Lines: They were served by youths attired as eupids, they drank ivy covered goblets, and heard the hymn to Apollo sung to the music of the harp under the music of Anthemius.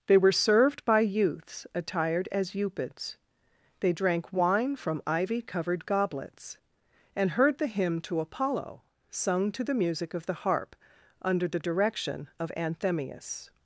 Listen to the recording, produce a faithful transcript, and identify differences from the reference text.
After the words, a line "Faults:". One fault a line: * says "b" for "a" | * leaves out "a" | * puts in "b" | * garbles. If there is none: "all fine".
They were served by youths attired as eupids, they drank wine from ivy covered goblets, and heard the hymn to Apollo sung to the music of the harp under the direction of Anthemius.
Faults:
* puts in "wine from"
* says "direction" for "music"